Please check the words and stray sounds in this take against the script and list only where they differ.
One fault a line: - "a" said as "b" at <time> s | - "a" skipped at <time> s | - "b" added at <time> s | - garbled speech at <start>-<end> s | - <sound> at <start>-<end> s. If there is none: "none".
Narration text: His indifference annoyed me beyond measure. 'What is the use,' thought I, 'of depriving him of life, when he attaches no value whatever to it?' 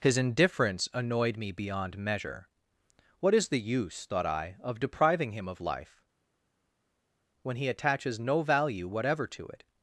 none